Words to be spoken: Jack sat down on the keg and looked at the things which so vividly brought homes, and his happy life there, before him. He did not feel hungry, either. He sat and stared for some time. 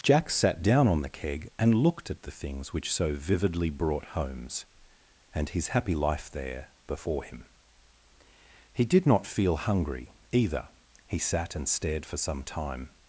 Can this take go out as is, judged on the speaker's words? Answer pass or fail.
pass